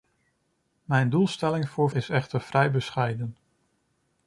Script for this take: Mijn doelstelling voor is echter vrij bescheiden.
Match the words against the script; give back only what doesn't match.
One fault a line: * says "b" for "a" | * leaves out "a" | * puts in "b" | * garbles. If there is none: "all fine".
all fine